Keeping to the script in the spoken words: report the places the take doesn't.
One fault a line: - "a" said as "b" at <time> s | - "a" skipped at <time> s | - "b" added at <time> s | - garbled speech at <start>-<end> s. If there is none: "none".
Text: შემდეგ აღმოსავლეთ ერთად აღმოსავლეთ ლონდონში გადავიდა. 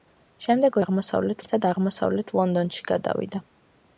none